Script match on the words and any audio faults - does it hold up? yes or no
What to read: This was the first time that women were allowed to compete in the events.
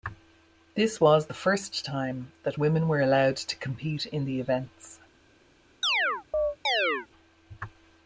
no